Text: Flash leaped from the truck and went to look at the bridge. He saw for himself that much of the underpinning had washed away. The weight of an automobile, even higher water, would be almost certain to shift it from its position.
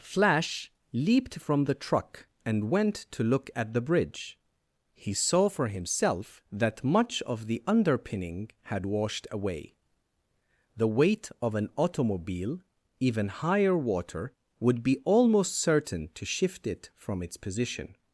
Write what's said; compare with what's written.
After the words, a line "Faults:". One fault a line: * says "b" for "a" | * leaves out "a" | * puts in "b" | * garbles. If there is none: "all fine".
Flash leaped from the truck and went to look at the bridge. He saw for himself that much of the underpinning had washed away. The weight of an automobile, even higher water, would be almost certain to shift it from its position.
Faults:
all fine